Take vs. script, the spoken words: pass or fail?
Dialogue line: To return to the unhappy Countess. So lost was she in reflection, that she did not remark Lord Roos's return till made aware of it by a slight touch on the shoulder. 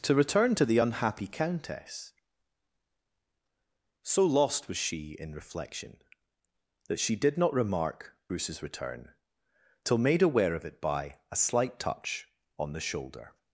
fail